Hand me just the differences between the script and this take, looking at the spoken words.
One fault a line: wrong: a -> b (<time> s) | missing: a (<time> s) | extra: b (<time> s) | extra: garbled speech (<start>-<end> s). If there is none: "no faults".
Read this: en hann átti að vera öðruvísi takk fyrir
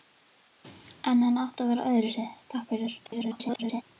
extra: garbled speech (3.0-3.8 s)